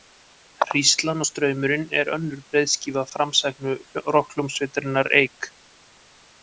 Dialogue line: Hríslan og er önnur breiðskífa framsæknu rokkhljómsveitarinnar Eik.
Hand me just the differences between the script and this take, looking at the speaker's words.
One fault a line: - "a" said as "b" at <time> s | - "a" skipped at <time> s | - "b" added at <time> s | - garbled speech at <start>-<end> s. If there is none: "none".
- "straumurinn" added at 1.3 s